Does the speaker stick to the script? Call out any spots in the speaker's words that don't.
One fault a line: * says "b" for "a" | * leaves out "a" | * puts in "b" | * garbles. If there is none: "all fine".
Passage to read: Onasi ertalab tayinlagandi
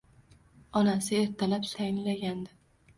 all fine